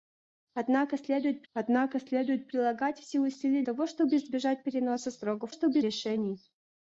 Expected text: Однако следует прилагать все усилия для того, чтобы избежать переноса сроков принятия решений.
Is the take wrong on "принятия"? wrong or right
wrong